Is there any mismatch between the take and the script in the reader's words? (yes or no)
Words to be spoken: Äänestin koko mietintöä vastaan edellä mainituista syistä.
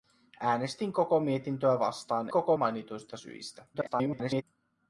yes